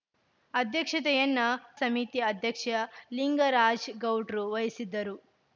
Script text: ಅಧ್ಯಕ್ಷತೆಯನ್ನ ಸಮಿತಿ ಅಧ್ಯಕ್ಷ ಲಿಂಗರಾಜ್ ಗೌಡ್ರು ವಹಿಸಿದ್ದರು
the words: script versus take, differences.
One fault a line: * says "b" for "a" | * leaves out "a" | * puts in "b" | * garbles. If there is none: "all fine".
all fine